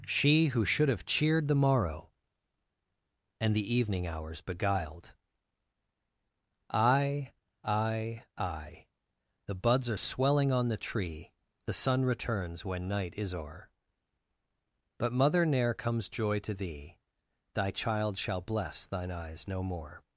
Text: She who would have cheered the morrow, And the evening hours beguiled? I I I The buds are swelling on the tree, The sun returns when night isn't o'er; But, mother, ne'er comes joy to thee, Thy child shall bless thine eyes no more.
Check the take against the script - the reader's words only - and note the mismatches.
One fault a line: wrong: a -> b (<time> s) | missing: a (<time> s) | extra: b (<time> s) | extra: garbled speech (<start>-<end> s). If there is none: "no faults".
wrong: would -> should (0.7 s)
wrong: isn't -> is (13.2 s)